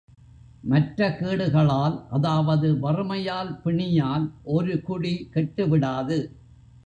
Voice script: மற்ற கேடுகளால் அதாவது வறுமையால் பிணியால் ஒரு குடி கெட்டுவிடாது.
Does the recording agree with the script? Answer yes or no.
yes